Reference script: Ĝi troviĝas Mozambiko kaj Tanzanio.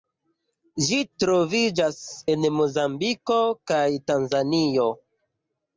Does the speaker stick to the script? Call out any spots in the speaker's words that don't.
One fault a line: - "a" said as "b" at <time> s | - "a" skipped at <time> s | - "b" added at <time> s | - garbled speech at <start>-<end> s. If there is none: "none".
- "en" added at 2.3 s